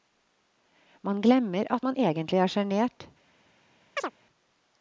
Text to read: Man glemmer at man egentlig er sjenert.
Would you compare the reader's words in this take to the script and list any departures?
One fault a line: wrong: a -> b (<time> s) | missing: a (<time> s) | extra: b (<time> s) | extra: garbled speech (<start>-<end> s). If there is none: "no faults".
no faults